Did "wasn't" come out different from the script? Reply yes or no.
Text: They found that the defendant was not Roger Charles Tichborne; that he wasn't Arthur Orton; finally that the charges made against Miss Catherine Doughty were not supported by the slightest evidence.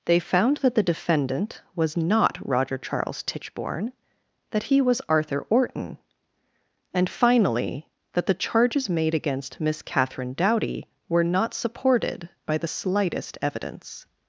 yes